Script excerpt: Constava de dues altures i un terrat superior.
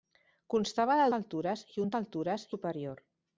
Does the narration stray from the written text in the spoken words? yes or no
yes